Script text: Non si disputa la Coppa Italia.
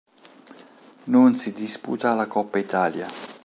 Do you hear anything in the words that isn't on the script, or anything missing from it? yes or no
no